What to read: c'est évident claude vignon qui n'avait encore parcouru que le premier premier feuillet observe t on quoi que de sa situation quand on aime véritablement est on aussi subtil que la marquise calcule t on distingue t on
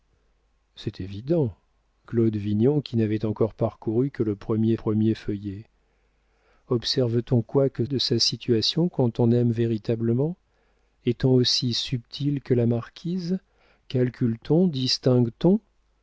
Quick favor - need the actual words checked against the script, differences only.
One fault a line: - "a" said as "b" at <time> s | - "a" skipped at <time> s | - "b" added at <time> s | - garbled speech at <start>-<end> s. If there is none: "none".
none